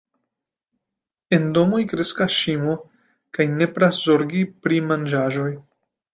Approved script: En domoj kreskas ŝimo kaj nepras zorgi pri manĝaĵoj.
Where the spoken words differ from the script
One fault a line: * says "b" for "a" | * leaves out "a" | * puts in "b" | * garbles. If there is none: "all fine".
all fine